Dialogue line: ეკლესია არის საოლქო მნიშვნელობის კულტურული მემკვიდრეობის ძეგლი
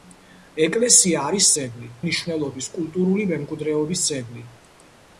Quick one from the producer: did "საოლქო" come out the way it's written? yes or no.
no